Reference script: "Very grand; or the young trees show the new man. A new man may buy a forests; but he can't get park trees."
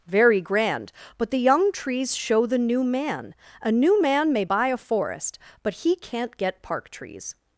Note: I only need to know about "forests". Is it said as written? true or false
false